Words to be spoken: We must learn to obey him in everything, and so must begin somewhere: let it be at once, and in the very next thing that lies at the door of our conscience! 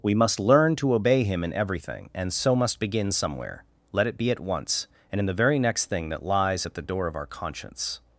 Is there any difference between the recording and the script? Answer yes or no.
no